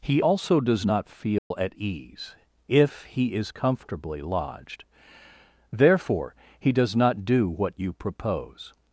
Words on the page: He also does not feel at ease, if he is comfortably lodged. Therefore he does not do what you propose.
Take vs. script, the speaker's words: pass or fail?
pass